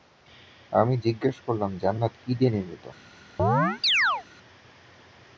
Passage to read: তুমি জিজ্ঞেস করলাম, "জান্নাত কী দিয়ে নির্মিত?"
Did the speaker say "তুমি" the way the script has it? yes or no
no